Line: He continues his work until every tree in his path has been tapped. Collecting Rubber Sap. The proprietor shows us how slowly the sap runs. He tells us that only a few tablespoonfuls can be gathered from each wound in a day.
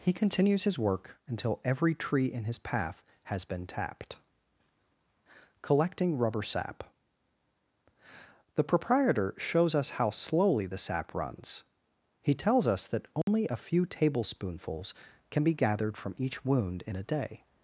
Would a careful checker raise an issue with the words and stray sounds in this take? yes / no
yes